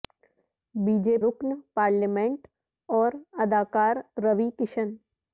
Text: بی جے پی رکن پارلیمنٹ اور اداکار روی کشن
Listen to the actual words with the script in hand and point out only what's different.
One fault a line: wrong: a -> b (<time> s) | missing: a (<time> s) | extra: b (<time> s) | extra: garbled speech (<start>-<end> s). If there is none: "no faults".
missing: پی (1.2 s)